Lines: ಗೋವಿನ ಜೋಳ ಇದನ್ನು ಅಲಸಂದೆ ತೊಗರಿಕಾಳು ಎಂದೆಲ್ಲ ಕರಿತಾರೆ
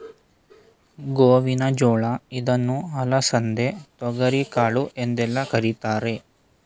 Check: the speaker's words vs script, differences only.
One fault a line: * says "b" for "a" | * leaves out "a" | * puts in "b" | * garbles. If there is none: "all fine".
all fine